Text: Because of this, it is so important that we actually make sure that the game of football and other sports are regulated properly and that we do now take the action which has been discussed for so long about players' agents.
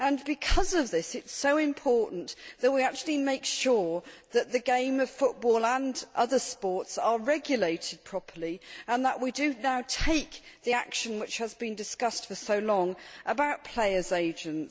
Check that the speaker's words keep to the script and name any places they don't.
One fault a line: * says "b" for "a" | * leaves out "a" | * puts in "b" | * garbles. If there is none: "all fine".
all fine